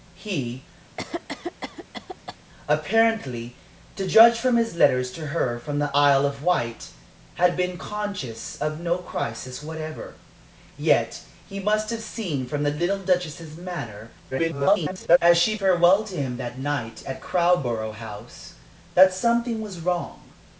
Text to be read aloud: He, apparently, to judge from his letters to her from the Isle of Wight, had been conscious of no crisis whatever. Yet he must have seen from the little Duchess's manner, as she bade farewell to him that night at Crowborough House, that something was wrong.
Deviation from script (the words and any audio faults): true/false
true